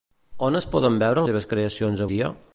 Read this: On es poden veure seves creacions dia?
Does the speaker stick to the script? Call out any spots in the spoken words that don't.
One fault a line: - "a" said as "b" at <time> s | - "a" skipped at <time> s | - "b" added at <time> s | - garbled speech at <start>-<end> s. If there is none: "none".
none